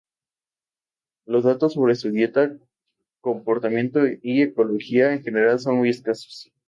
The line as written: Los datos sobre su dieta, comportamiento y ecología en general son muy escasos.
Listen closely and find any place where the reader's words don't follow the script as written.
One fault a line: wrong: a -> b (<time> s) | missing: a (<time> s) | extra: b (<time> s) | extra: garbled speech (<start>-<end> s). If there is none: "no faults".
no faults